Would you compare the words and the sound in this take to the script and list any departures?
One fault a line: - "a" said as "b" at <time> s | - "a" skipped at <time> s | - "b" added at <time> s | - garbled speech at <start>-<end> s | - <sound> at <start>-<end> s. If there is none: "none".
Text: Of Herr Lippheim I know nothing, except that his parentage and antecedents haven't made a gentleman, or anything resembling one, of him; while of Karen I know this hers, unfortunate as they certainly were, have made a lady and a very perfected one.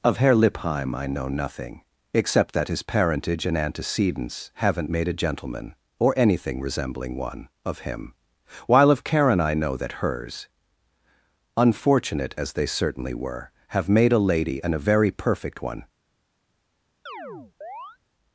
- "this" said as "that" at 9.8 s
- "perfected" said as "perfect" at 15.1 s
- chirp at 17.1-18.0 s